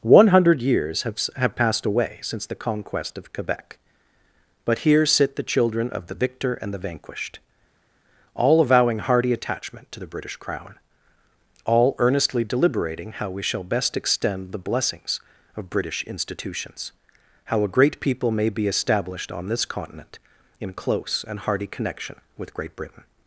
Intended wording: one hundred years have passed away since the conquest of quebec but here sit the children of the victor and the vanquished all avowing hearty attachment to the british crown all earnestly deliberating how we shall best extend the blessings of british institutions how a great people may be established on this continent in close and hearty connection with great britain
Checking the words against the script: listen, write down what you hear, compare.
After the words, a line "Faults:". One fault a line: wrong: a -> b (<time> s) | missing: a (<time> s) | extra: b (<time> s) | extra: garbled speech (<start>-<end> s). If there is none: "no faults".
one hundred years have have passed away since the conquest of quebec but here sit the children of the victor and the vanquished all avowing hearty attachment to the british crown all earnestly deliberating how we shall best extend the blessings of british institutions how a great people may be established on this continent in close and hearty connection with great britain
Faults:
extra: have (1.4 s)